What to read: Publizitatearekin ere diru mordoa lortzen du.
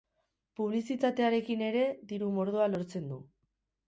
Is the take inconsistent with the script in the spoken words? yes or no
no